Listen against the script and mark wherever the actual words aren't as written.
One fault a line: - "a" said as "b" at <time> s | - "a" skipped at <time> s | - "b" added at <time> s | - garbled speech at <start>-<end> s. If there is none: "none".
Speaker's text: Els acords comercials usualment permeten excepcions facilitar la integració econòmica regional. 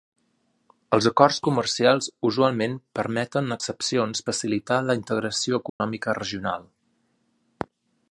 none